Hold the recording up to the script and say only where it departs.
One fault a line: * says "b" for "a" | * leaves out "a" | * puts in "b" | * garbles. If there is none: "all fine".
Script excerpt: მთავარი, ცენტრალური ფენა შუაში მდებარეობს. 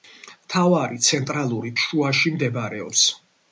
* leaves out "ფენა"